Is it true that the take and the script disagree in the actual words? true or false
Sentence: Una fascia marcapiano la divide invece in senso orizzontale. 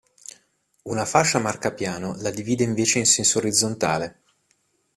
false